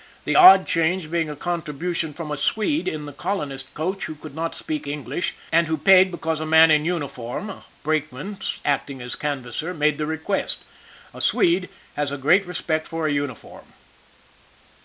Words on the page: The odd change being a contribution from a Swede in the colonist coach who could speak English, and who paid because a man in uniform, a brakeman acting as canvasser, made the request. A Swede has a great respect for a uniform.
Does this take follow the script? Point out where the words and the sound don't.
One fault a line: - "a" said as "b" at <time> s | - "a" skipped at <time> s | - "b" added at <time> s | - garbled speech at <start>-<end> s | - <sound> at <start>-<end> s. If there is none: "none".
- "not" added at 4.3 s